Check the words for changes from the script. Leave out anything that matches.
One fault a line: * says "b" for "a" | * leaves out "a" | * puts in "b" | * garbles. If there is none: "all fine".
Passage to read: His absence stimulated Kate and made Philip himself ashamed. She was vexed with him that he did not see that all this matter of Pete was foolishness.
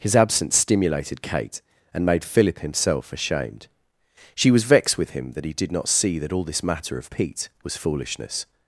all fine